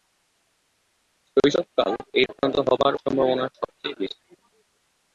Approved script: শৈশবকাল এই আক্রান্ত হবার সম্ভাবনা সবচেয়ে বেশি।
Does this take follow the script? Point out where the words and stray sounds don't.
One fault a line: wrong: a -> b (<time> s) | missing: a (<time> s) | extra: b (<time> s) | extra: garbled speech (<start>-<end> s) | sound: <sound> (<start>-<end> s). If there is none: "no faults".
no faults